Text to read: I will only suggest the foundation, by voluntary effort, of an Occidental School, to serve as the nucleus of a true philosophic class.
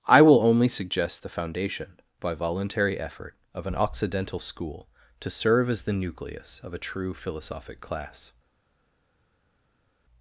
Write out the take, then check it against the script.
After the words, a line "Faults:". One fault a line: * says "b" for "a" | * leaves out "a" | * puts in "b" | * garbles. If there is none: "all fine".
I will only suggest the foundation, by voluntary effort, of an Occidental School, to serve as the nucleus of a true philosophic class.
Faults:
all fine